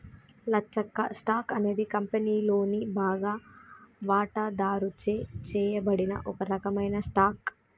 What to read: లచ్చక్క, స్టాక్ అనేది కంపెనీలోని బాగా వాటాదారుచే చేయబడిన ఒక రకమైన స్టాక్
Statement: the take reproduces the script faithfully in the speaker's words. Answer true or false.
true